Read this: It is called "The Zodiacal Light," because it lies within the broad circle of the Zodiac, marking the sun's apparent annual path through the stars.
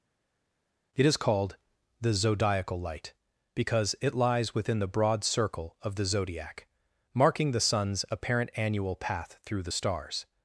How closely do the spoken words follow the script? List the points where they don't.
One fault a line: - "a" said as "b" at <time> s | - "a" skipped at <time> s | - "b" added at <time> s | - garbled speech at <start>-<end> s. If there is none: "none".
none